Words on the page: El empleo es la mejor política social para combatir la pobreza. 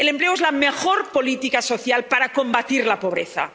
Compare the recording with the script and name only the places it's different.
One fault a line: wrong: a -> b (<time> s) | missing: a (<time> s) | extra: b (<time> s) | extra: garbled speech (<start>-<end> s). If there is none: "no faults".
no faults